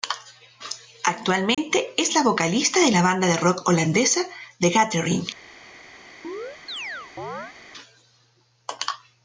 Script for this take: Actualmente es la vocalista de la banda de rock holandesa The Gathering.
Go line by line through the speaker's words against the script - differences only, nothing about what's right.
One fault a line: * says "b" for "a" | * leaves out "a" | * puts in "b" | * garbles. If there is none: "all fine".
all fine